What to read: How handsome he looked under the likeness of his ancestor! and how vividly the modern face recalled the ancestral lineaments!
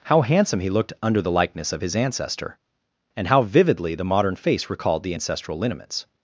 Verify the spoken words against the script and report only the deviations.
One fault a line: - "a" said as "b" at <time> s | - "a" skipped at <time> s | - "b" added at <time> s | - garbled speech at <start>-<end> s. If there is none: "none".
none